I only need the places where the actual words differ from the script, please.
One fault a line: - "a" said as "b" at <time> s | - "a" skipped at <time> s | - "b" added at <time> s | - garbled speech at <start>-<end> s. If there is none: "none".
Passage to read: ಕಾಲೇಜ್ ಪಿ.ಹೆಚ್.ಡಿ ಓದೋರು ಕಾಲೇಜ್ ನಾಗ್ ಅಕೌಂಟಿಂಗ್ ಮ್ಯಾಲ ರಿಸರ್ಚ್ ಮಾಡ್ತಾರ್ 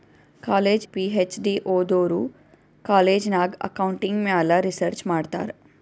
none